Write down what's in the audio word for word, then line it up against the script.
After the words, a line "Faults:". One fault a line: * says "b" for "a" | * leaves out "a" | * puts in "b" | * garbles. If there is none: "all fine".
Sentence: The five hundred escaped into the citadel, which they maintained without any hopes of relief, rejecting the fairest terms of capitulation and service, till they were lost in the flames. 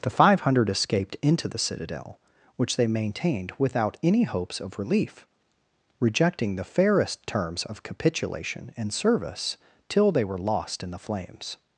The five hundred escaped into the citadel, which they maintained without any hopes of relief, rejecting the fairest terms of capitulation and service, till they were lost in the flames.
Faults:
all fine